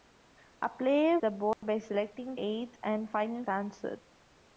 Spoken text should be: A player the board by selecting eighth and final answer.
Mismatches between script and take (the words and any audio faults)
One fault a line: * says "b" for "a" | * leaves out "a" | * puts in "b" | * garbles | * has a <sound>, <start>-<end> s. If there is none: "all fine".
* has a dropout, 1.5-1.6 s